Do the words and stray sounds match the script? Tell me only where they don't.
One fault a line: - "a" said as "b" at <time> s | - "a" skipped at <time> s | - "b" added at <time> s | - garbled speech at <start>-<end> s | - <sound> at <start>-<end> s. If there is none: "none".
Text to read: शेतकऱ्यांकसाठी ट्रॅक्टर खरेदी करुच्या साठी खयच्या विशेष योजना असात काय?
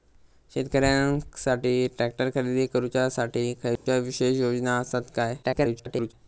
- dropout at 3.8-3.9 s
- garbled speech at 5.4-6.1 s